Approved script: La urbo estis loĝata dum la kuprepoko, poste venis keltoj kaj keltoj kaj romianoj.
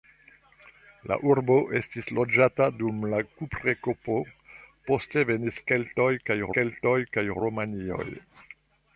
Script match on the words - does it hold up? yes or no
yes